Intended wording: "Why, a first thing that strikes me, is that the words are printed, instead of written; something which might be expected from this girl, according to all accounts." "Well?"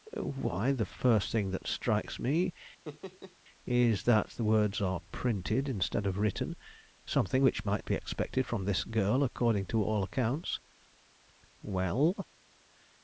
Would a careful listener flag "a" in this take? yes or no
yes